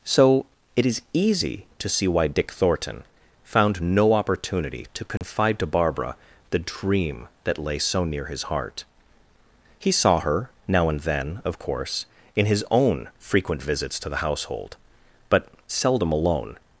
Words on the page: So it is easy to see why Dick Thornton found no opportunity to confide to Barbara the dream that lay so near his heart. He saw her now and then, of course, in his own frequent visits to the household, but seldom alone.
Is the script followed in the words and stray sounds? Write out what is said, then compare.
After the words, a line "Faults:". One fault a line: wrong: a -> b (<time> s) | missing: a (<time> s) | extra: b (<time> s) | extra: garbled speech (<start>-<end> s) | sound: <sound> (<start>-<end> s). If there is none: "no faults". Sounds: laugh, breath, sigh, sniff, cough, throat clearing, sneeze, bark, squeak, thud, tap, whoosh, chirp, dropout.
So it is easy to see why Dick Thornton found no opportunity to confide to Barbara the dream that lay so near his heart. He saw her now and then, of course, in his own frequent visits to the household, but seldom alone.
Faults:
sound: dropout (5.2-5.2 s)